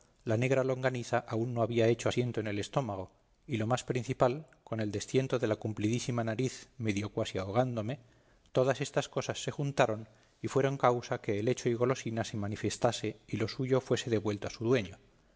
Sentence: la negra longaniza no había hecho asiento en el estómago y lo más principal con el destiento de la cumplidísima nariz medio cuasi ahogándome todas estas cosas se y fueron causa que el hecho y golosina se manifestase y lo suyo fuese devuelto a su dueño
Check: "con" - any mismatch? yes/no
no